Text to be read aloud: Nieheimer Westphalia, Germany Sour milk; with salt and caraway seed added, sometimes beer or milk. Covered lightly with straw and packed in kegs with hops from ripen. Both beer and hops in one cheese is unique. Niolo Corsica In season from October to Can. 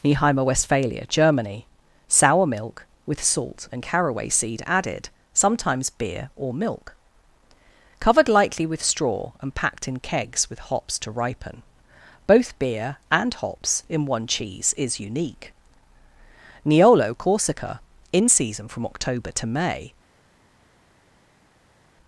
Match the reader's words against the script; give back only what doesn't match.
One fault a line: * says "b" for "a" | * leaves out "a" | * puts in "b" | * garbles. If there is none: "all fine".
* says "to" for "from"
* says "May" for "Can"